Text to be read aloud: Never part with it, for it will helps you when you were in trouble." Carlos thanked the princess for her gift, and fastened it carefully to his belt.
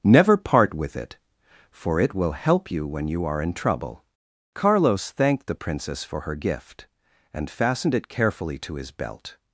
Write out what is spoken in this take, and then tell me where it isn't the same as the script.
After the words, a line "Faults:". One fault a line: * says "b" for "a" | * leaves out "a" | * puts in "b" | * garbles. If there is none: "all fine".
Never part with it, for it will help you when you are in trouble." Carlos thanked the princess for her gift, and fastened it carefully to his belt.
Faults:
* says "help" for "helps"
* says "are" for "were"